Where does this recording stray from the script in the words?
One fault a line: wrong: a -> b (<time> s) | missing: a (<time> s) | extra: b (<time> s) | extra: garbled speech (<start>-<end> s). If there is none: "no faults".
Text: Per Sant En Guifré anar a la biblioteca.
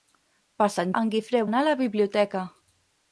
no faults